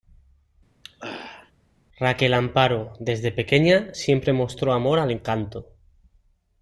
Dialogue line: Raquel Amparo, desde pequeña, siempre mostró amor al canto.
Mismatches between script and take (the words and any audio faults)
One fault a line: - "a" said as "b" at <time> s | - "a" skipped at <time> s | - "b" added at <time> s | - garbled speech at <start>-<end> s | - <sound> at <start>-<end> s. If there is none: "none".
- throat clearing at 0.8-1.5 s